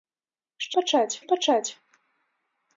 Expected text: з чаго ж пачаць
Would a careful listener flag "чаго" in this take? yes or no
yes